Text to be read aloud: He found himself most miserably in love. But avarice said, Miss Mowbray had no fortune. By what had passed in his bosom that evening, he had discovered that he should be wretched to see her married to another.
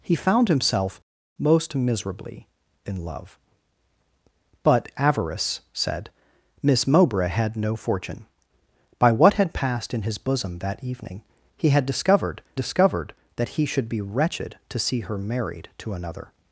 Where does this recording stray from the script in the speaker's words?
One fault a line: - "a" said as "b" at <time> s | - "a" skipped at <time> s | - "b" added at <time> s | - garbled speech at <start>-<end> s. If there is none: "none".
- "discovered" added at 12.5 s